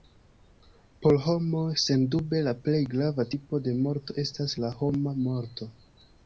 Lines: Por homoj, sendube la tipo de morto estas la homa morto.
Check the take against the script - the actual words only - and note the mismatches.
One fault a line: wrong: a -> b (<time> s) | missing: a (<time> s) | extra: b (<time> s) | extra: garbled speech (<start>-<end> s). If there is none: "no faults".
extra: plej grava (2.7 s)